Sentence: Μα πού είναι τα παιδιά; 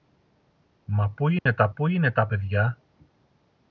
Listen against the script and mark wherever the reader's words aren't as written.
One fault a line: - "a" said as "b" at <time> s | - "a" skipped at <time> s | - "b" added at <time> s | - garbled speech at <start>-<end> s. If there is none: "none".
- "πού είναι τα" added at 1.7 s